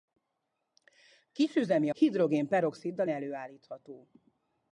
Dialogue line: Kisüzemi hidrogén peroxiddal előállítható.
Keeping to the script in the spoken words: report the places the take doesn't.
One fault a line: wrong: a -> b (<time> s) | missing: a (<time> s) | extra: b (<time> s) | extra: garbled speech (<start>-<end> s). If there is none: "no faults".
no faults